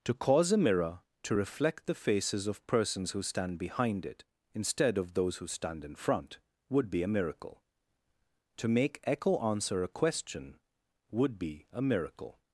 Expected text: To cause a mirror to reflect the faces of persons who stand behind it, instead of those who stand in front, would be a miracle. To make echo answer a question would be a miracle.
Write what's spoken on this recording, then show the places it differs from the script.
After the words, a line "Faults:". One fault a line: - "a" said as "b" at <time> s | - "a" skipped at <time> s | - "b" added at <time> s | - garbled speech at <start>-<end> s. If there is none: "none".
To cause a mirror to reflect the faces of persons who stand behind it, instead of those who stand in front, would be a miracle. To make echo answer a question would be a miracle.
Faults:
none